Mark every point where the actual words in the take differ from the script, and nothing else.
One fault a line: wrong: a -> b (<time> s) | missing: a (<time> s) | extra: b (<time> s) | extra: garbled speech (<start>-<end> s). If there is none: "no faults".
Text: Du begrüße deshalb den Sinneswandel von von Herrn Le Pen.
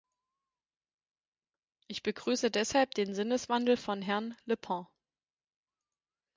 wrong: Du -> Ich (1.9 s)
missing: von (4.0 s)